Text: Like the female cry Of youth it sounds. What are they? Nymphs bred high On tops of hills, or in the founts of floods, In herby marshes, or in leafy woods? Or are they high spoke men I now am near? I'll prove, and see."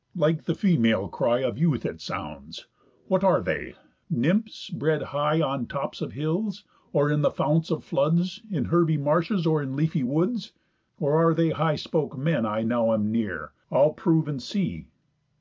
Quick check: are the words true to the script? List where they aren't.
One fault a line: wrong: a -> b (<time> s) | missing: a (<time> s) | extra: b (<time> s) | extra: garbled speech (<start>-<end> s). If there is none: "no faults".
no faults